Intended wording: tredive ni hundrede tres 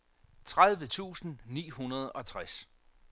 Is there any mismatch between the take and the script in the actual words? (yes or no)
yes